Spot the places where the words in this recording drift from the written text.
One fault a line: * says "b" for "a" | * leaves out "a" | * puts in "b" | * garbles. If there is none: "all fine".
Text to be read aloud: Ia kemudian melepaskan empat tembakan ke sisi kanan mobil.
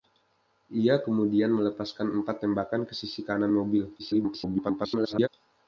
* garbles